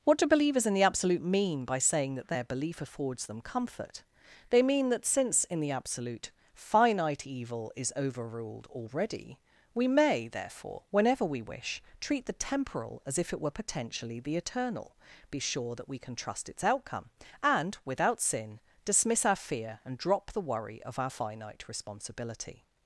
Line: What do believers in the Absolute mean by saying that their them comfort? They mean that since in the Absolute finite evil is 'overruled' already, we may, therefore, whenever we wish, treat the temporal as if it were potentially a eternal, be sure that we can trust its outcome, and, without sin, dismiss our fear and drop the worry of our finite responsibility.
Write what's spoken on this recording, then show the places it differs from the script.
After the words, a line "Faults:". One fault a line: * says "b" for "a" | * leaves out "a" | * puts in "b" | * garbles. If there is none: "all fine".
What do believers in the Absolute mean by saying that their belief affords them comfort? They mean that since in the Absolute finite evil is 'overruled' already, we may, therefore, whenever we wish, treat the temporal as if it were potentially the eternal, be sure that we can trust its outcome, and, without sin, dismiss our fear and drop the worry of our finite responsibility.
Faults:
* puts in "belief affords"
* says "the" for "a"